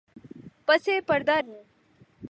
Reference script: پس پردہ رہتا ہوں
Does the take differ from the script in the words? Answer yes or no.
yes